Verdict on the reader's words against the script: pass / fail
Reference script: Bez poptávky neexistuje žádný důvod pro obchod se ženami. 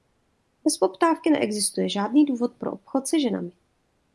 pass